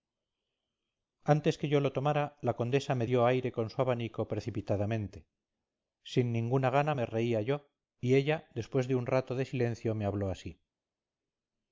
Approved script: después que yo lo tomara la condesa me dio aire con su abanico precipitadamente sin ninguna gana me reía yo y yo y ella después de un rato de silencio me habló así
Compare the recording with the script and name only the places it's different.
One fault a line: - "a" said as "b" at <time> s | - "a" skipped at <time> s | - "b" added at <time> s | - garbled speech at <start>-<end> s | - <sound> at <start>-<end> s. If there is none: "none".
- "después" said as "antes" at 1.3 s
- "yo y" skipped at 8.2 s